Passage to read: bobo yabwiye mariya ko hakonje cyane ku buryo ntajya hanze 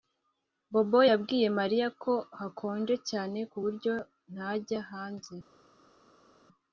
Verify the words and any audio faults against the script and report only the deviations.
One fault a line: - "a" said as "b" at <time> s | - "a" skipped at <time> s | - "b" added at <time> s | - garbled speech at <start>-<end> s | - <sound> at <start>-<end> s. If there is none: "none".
none